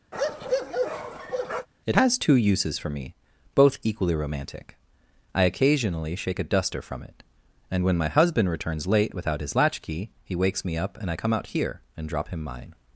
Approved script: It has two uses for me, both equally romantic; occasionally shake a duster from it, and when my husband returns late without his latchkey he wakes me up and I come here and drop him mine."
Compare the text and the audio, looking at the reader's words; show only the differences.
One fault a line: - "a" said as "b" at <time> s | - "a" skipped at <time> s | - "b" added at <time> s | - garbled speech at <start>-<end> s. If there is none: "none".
- "I" added at 5.3 s
- "out" added at 11.3 s